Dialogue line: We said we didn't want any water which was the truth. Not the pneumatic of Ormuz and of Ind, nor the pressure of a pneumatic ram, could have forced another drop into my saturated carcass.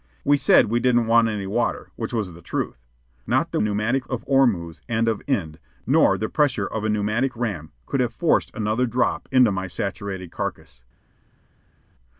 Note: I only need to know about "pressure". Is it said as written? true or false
true